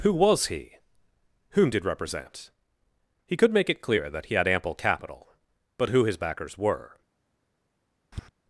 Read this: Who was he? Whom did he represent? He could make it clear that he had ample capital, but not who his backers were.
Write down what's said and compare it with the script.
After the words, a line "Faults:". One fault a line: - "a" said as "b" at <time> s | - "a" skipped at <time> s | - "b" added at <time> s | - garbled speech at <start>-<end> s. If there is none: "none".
Who was he? Whom did represent? He could make it clear that he had ample capital, but who his backers were.
Faults:
- "he" skipped at 1.9 s
- "not" skipped at 5.9 s